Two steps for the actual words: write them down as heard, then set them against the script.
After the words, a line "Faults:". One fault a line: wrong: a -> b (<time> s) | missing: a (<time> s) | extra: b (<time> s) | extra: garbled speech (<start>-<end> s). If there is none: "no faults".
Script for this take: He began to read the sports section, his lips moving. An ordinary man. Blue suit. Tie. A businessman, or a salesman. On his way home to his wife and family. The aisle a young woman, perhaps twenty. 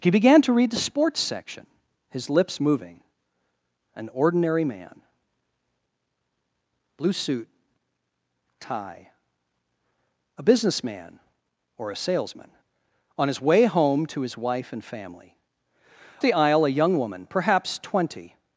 He began to read the sports section, his lips moving. An ordinary man. Blue suit. Tie. A businessman, or a salesman. On his way home to his wife and family. The aisle a young woman, perhaps twenty.
Faults:
no faults